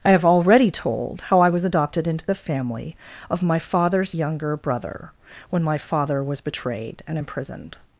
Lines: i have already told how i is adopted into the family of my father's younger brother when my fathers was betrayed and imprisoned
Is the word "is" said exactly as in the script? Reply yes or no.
no